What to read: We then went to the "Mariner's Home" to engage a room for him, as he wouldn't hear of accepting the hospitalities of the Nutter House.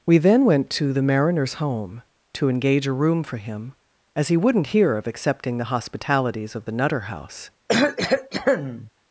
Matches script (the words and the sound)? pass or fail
fail